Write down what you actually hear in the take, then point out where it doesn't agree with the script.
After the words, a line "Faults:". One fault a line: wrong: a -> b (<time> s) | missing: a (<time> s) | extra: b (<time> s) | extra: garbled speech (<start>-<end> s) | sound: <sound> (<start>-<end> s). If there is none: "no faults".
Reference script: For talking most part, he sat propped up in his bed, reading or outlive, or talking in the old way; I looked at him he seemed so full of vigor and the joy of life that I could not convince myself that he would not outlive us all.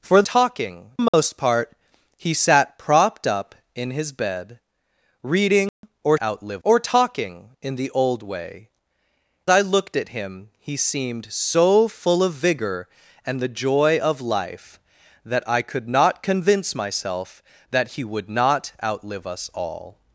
For talking most part, he sat propped up in his bed, reading or outlive, or talking in the old way; I looked at him he seemed so full of vigor and the joy of life that I could not convince myself that he would not outlive us all.
Faults:
sound: dropout (1.1-1.1 s)
sound: dropout (5.7-5.8 s)